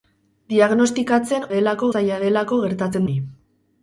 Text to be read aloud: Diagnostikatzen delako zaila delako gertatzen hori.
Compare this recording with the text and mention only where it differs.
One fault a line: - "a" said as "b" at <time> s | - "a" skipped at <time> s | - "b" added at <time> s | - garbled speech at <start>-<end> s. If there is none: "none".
none